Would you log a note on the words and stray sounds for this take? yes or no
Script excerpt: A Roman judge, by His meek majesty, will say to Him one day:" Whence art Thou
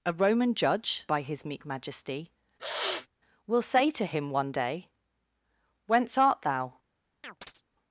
yes